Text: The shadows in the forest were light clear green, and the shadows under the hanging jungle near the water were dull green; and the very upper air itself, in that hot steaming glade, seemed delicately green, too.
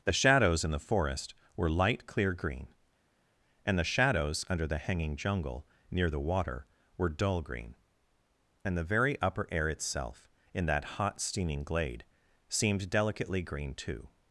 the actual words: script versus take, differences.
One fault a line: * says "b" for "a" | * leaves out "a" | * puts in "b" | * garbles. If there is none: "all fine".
all fine